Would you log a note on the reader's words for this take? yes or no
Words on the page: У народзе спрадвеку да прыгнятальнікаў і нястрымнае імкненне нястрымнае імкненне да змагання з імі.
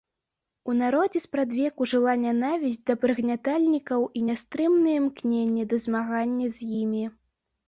yes